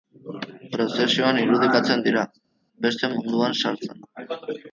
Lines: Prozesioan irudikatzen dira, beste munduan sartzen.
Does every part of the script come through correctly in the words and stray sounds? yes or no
yes